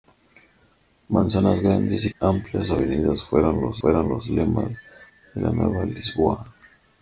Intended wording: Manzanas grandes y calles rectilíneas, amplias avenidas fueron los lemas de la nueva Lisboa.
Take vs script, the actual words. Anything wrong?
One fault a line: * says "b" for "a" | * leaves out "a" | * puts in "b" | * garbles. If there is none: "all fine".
* says "amplias avenidas fueron los" for "calles rectilíneas amplias avenidas"